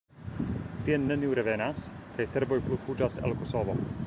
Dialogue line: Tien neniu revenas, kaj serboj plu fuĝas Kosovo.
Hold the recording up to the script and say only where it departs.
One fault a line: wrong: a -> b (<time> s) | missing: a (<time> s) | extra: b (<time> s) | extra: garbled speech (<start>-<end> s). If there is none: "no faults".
extra: el (3.2 s)